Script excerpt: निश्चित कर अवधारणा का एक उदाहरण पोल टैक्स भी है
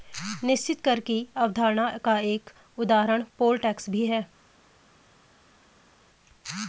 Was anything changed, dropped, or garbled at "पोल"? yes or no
no